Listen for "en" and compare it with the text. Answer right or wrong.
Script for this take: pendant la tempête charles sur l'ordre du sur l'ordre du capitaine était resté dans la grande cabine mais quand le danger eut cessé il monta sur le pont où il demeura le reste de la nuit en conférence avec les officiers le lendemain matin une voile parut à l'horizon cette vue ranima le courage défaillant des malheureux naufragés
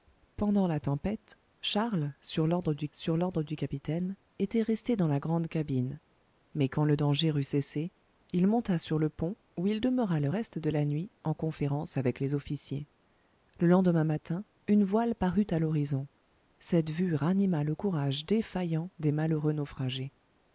right